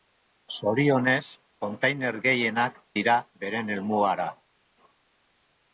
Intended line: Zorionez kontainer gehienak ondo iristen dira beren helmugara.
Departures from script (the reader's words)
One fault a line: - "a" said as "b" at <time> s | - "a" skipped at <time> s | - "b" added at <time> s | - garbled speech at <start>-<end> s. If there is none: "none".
- "ondo iristen" skipped at 2.8 s